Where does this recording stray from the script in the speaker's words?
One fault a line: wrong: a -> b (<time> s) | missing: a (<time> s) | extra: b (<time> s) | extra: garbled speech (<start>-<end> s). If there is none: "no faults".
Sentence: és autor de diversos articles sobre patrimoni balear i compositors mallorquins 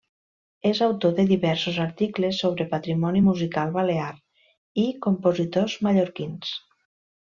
extra: musical (3.3 s)